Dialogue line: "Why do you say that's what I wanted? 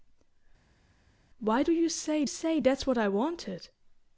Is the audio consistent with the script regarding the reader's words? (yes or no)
no